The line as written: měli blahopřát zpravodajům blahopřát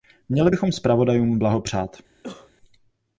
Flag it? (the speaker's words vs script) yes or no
yes